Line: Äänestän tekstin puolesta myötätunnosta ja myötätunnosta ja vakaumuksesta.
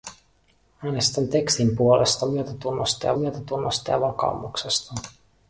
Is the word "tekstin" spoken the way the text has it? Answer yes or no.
yes